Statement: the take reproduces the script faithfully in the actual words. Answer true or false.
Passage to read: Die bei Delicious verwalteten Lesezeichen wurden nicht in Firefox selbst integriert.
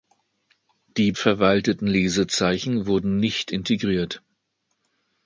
false